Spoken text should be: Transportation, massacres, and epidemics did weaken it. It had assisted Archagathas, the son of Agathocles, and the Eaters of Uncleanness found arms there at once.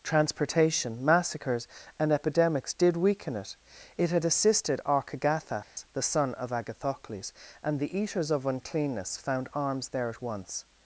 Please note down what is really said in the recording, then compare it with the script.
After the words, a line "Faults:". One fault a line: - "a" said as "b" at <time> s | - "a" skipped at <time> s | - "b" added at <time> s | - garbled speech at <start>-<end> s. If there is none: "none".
Transportation, massacres, and epidemics did weaken it. It had assisted Archagathas, the son of Agathocles, and the Eaters of Uncleanness found arms there at once.
Faults:
none